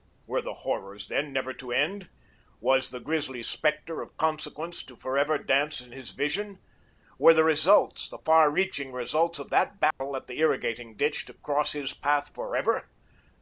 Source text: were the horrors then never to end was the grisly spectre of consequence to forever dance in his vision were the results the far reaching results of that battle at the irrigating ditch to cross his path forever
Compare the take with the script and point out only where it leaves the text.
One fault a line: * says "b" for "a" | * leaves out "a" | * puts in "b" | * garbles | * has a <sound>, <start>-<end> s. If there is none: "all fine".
* has a dropout, 9.9-10.0 s